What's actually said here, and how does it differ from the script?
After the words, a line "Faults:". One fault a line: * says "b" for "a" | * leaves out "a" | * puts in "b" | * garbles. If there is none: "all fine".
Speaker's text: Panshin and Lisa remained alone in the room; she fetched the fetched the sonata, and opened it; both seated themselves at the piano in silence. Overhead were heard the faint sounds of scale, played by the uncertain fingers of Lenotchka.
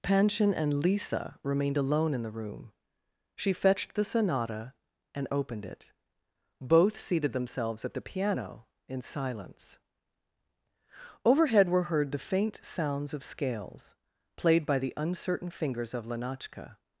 Panshin and Lisa remained alone in the room; she fetched the sonata, and opened it; both seated themselves at the piano in silence. Overhead were heard the faint sounds of scales, played by the uncertain fingers of Lenotchka.
Faults:
* leaves out "fetched the"
* says "scales" for "scale"